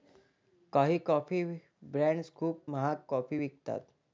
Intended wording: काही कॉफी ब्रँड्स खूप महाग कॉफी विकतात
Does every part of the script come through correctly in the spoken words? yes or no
yes